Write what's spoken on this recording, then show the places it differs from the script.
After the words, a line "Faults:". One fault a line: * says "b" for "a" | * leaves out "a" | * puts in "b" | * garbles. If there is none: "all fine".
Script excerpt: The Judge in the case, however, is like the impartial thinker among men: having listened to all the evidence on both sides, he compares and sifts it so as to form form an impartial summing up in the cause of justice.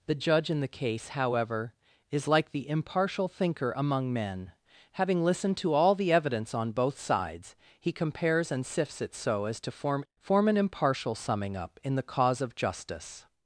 The Judge in the case, however, is like the impartial thinker among men: having listened to all the evidence on both sides, he compares and sifts it so as to form form an impartial summing up in the cause of justice.
Faults:
all fine